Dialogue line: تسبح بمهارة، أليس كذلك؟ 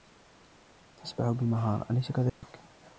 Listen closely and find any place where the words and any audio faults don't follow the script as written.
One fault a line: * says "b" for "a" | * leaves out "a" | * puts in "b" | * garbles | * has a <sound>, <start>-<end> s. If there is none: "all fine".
* has a dropout, 2.3-2.4 s